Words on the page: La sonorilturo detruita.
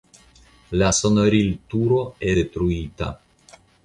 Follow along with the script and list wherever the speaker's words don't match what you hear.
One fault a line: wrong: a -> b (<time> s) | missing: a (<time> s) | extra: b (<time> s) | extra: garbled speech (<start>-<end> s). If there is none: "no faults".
no faults